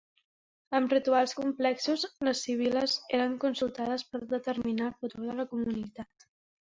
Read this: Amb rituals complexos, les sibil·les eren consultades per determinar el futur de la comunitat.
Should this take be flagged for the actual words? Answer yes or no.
no